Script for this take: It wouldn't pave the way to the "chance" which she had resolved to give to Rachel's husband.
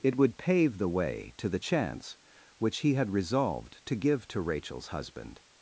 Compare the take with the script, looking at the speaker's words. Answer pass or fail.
fail